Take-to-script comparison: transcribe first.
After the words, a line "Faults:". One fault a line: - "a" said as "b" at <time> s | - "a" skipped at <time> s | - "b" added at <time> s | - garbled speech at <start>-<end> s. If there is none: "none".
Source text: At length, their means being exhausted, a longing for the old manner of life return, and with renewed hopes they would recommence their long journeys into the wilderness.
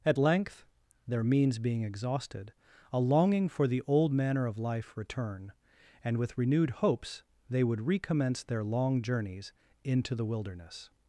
At length, their means being exhausted, a longing for the old manner of life return, and with renewed hopes they would recommence their long journeys into the wilderness.
Faults:
none